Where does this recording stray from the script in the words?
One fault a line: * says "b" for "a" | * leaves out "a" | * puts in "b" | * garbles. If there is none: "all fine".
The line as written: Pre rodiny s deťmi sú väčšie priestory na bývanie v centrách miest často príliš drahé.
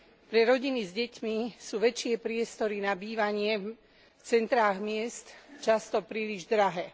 all fine